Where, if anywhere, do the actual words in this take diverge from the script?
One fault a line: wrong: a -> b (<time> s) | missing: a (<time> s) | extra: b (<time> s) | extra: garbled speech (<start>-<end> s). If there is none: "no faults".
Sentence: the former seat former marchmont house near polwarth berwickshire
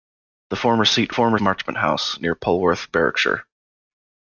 no faults